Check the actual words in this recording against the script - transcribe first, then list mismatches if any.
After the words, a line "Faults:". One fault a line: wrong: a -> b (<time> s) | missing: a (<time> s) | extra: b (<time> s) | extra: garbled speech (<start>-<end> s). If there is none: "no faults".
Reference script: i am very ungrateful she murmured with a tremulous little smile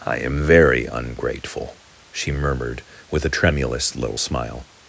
i am very ungrateful she murmured with a tremulous little smile
Faults:
no faults